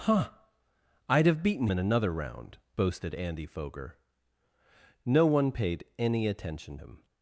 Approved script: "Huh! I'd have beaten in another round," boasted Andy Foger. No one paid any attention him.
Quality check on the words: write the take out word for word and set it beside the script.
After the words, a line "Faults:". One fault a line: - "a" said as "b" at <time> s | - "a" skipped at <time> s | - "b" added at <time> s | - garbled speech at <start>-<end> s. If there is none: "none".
"Huh! I'd have beaten in another round," boasted Andy Foger. No one paid any attention him.
Faults:
none